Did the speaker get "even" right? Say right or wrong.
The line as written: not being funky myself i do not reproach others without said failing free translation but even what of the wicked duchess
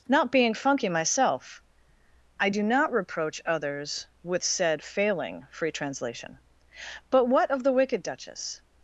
wrong